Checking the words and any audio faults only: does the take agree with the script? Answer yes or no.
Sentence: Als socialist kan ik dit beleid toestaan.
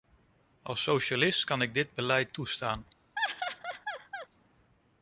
no